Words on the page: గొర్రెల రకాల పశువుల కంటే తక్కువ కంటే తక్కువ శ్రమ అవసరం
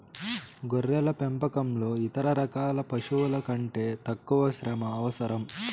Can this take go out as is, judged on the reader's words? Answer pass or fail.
fail